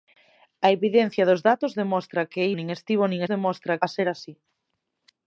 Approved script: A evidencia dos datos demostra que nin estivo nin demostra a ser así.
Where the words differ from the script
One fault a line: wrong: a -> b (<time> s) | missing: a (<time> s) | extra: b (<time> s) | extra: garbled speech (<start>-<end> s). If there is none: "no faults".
no faults